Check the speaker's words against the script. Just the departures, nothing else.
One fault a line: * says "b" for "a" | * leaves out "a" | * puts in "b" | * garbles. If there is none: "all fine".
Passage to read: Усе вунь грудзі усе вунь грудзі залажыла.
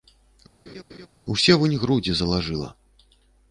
* leaves out "усе вунь грудзі"